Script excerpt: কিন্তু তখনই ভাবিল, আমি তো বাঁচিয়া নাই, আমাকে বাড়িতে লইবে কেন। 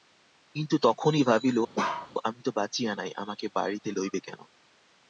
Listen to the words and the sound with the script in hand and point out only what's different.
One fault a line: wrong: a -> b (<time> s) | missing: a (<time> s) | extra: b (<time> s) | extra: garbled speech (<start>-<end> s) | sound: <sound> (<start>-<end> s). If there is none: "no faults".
sound: bark (1.8-2.1 s)